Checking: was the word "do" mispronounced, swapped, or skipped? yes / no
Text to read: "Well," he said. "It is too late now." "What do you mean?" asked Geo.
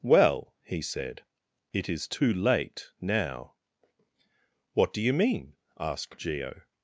no